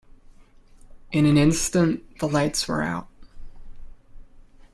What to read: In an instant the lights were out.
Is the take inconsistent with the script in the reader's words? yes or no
no